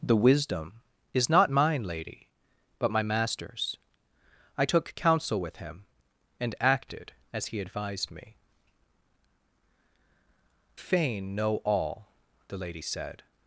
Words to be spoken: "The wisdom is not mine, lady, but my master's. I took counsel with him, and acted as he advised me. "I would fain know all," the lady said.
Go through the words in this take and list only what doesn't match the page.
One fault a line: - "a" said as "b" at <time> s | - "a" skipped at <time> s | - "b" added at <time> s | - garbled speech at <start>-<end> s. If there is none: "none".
- "I would" skipped at 8.3 s